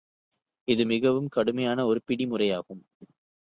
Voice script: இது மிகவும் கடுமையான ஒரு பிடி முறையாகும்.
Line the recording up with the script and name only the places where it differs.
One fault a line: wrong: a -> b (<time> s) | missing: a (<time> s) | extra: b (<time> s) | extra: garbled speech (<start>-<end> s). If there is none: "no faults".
no faults